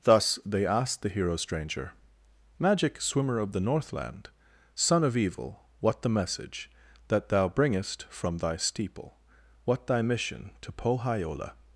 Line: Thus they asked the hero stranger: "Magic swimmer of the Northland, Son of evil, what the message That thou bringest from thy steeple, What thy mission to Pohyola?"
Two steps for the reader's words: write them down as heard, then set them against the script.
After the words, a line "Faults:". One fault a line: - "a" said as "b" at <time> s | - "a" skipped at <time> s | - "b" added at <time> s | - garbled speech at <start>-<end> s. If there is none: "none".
Thus they asked the hero stranger: "Magic swimmer of the Northland, Son of evil, what the message That thou bringest from thy steeple, What thy mission to Pohyola?"
Faults:
none